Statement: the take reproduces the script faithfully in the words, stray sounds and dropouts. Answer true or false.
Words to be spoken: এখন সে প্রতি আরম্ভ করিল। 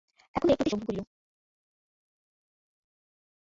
true